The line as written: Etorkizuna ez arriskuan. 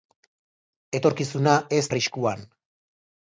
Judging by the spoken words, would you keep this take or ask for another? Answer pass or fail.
pass